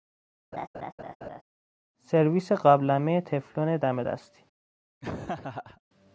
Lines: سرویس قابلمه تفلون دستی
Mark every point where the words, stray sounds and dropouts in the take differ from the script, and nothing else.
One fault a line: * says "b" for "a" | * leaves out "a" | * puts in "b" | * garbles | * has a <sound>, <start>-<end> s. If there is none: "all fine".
* has a laugh, 0.5-1.4 s
* puts in "دم"
* has a laugh, 5.0-5.8 s